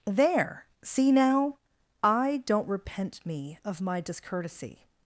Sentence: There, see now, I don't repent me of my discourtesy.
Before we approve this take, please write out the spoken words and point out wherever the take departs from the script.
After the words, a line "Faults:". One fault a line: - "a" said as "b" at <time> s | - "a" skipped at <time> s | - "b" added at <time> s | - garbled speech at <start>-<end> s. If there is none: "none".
There, see now, I don't repent me of my discourtesy.
Faults:
none